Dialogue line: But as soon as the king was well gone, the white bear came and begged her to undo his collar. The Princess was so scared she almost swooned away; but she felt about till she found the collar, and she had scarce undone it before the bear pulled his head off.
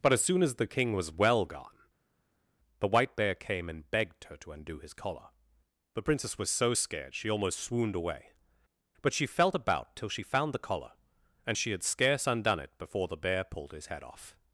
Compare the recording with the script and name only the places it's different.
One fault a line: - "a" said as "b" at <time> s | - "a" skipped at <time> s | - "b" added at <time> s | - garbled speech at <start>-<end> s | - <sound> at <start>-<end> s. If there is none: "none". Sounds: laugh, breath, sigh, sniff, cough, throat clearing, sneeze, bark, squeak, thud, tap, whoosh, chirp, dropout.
none